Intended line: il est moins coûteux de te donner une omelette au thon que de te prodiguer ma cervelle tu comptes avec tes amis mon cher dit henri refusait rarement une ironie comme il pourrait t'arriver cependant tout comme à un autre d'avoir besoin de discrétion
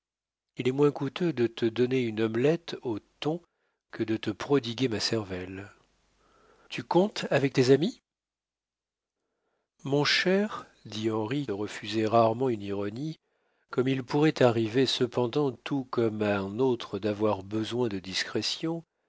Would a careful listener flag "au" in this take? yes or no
no